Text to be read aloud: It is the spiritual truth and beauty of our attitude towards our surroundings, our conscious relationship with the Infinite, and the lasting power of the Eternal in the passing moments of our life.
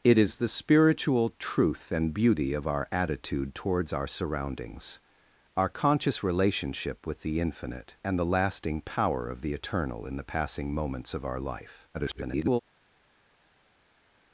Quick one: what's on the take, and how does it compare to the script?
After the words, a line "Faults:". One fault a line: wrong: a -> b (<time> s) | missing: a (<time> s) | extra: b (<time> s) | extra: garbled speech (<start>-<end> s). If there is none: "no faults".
It is the spiritual truth and beauty of our attitude towards our surroundings, our conscious relationship with the Infinite, and the lasting power of the Eternal in the passing moments of our life. [garbled]
Faults:
extra: garbled speech (11.9-12.6 s)